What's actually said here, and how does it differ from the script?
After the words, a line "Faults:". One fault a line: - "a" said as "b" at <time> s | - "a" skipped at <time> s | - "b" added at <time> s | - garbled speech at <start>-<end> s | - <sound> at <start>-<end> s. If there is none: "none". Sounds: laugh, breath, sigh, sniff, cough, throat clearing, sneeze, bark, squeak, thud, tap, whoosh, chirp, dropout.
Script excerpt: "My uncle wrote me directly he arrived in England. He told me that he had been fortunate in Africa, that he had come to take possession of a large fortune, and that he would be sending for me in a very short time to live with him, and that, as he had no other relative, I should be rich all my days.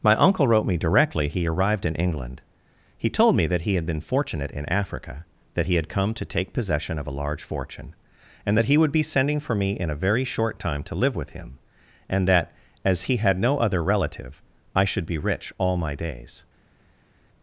"My uncle wrote me directly he arrived in England. He told me that he had been fortunate in Africa, that he had come to take possession of a large fortune, and that he would be sending for me in a very short time to live with him, and that, as he had no other relative, I should be rich all my days.
Faults:
none